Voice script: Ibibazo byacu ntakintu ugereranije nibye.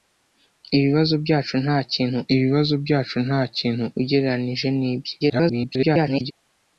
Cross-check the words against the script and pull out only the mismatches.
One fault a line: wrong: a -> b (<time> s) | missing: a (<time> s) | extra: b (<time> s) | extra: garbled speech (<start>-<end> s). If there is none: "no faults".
extra: ibibazo byacu ntakintu (2.3 s)
extra: garbled speech (5.2-6.3 s)